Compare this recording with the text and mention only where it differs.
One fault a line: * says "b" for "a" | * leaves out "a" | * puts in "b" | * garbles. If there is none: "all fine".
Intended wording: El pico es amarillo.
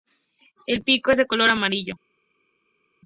* puts in "de color"